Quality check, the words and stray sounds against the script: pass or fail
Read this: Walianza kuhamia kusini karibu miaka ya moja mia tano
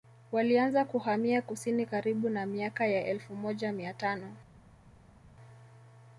fail